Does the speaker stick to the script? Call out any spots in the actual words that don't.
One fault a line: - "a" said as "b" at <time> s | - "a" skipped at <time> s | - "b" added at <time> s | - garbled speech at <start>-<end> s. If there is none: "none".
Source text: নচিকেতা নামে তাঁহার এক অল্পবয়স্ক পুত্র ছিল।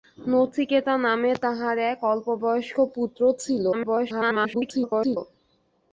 - garbled speech at 3.7-5.2 s